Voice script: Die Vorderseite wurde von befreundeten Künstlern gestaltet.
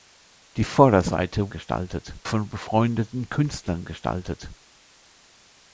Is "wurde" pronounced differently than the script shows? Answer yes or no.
yes